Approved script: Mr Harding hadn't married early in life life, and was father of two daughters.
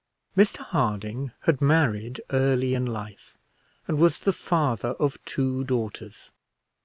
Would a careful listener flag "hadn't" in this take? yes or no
yes